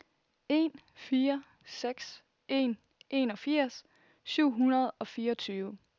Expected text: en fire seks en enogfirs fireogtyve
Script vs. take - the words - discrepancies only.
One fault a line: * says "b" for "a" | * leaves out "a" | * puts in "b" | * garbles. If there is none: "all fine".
* puts in "syv hundrede og"